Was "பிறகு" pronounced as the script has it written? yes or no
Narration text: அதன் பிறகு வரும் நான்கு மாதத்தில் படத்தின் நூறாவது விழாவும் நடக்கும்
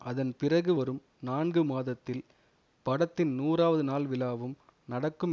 yes